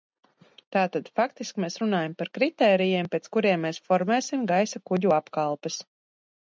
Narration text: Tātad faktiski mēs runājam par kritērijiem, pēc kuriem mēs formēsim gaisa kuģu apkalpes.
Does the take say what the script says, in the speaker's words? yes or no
yes